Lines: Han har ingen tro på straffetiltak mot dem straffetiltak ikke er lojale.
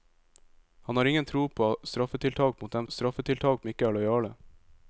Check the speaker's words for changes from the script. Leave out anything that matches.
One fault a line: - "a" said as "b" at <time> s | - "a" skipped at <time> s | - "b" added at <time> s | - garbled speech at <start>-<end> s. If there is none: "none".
none